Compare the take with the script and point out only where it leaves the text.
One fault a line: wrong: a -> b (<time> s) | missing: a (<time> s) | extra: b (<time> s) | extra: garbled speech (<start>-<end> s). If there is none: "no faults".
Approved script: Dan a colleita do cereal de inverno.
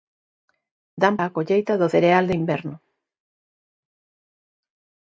no faults